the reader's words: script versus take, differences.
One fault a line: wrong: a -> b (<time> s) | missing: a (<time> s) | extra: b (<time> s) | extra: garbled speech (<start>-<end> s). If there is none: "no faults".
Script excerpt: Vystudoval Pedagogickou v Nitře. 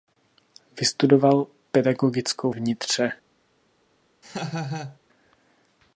no faults